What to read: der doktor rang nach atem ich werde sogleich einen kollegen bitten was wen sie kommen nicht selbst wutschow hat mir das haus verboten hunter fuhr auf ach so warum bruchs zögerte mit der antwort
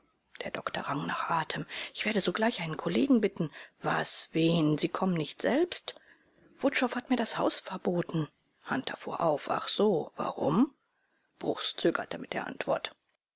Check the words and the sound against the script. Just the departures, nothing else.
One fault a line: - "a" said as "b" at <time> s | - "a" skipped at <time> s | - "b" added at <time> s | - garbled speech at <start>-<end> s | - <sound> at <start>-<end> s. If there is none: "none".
none